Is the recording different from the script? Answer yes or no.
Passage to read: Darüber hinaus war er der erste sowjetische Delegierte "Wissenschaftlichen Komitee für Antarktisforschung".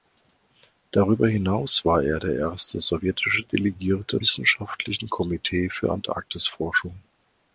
no